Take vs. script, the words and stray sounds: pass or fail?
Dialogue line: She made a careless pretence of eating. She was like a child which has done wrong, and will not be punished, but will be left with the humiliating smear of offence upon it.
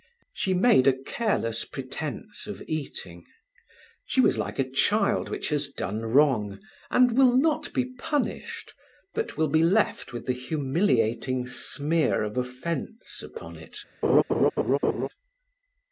fail